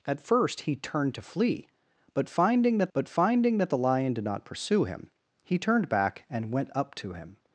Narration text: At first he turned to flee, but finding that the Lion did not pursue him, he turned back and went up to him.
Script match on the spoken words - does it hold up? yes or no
no